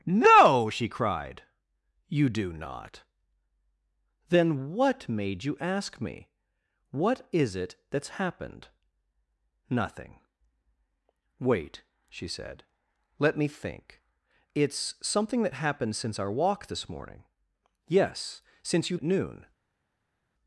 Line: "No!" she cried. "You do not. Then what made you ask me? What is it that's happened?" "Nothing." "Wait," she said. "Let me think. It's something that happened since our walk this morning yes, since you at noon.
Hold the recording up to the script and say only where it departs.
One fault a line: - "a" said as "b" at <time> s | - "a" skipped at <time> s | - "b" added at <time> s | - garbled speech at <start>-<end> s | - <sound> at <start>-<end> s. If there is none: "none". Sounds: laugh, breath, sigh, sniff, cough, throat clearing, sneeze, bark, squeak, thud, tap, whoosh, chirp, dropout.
none